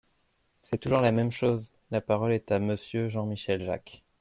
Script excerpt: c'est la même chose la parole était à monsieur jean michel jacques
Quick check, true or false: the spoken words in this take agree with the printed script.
false